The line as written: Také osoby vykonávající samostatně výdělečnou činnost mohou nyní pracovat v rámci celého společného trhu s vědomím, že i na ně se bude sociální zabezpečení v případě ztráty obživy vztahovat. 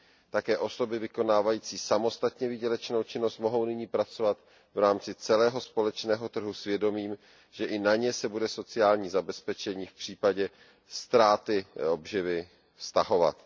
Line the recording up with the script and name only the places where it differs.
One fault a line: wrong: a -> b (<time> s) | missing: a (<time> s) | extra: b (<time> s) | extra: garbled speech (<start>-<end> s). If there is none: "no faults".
no faults